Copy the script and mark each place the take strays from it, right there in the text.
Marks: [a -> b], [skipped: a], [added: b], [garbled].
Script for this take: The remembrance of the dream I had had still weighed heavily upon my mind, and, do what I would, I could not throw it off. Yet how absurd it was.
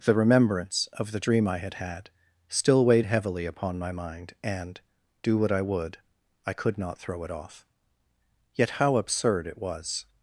The remembrance of the dream I had had still weighed heavily upon my mind, and, do what I would, I could not throw it off. Yet how absurd it was.